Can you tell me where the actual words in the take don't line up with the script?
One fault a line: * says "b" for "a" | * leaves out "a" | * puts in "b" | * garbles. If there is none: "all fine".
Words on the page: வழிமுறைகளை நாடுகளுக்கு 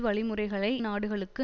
all fine